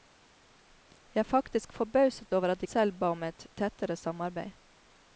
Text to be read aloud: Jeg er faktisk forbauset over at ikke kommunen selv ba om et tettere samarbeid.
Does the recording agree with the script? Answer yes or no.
no